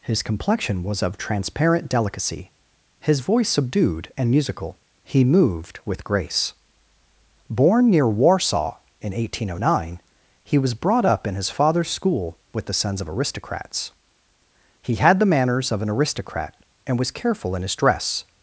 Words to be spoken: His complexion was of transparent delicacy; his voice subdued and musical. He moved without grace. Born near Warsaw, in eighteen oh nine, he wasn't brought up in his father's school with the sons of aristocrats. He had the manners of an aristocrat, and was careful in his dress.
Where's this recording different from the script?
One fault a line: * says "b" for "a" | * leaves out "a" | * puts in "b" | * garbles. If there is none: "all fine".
* says "with" for "without"
* says "was" for "wasn't"